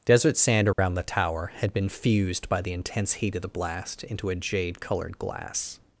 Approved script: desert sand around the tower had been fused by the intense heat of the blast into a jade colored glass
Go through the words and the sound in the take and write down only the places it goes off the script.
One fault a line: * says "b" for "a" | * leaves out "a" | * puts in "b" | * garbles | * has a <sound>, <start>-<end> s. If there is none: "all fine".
* has a dropout, 0.7-0.8 s